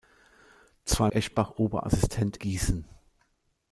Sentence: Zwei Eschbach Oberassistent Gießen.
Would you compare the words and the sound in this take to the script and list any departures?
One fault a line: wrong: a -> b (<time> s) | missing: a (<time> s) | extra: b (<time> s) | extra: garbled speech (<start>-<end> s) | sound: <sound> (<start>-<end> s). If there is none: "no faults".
no faults